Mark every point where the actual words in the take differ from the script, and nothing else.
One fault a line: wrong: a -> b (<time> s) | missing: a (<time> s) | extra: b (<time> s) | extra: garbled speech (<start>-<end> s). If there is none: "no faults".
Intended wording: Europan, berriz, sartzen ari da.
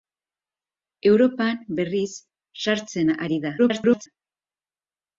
extra: garbled speech (3.6-4.1 s)